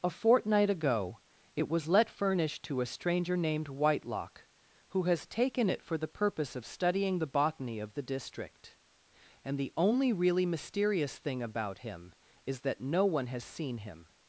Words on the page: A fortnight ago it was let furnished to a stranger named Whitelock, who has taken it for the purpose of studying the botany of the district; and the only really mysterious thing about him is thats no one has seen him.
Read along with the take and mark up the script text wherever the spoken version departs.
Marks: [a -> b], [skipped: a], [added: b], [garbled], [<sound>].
A fortnight ago it was let furnished to a stranger named Whitelock, who has taken it for the purpose of studying the botany of the district; and the only really mysterious thing about him is [thats -> that] no one has seen him.